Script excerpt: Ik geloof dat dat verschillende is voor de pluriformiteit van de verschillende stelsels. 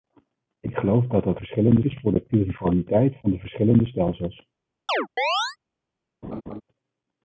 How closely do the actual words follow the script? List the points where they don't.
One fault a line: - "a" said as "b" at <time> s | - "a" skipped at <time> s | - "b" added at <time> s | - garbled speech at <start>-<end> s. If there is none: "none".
none